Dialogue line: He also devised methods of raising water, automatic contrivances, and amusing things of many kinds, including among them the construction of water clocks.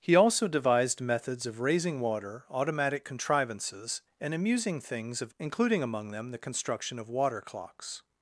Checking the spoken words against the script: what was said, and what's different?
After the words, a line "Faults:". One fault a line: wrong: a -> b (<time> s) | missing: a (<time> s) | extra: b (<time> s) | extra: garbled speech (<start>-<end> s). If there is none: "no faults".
He also devised methods of raising water, automatic contrivances, and amusing things of including among them the construction of water clocks.
Faults:
missing: many kinds (5.3 s)